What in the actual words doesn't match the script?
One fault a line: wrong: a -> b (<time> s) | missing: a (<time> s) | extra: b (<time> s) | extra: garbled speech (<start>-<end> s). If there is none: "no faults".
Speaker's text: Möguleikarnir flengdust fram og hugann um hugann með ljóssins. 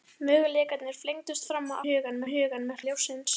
no faults